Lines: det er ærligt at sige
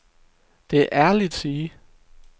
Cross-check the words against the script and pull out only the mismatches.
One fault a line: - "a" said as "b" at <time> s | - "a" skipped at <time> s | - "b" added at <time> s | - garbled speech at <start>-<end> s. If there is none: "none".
- "at" skipped at 1.4 s